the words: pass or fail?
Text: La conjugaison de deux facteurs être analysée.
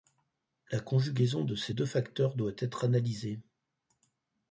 fail